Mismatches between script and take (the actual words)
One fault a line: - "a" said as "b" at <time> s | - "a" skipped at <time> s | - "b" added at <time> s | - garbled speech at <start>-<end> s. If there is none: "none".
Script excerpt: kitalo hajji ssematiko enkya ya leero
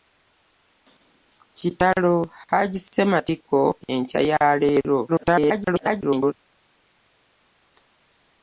- garbled speech at 5.1-6.3 s